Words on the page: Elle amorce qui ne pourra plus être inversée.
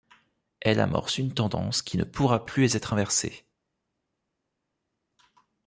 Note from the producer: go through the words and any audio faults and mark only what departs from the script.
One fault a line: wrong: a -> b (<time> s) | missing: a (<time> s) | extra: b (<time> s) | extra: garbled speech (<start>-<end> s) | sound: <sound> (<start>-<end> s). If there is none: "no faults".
extra: une tendance (1.2 s)